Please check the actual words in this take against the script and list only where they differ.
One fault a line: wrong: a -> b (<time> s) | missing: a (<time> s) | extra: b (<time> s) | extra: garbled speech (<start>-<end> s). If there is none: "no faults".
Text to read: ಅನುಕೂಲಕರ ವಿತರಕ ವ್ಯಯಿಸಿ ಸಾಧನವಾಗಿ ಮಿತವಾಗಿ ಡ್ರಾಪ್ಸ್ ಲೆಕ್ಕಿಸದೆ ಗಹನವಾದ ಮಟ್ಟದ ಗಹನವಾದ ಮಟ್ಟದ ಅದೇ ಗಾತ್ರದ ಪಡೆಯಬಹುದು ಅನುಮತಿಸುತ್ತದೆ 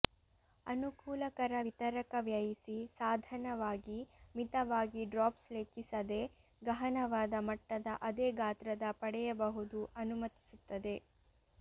missing: ಗಹನವಾದ ಮಟ್ಟದ (7.9 s)